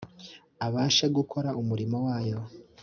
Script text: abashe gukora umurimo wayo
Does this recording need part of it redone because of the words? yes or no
no